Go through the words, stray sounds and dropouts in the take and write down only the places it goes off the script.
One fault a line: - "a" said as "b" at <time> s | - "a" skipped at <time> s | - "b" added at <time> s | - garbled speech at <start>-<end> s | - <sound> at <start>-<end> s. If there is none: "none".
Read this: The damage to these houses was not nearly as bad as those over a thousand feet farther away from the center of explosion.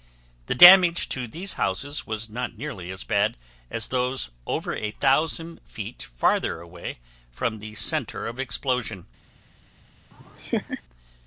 - laugh at 10.1-10.8 s